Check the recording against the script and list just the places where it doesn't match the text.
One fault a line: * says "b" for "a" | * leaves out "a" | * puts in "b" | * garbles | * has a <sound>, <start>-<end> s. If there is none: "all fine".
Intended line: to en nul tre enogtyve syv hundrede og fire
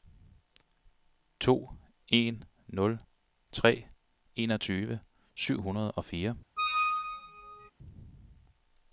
* has a squeak, 6.6-7.7 s